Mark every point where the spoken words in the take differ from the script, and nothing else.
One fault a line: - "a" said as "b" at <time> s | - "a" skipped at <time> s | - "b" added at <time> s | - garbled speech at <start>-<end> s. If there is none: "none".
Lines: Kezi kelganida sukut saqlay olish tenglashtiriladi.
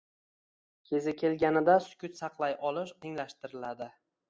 none